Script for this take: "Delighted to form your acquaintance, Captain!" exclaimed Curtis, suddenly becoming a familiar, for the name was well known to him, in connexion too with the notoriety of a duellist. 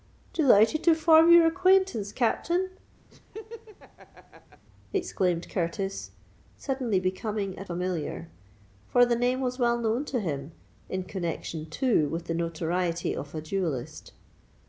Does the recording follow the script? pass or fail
pass